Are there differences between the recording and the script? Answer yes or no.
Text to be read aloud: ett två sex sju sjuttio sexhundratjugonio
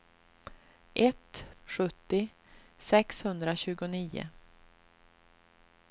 yes